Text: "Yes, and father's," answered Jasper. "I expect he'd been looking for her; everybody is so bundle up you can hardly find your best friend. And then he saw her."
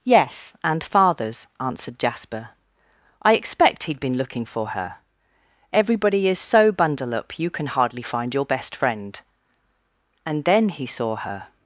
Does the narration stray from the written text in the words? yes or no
no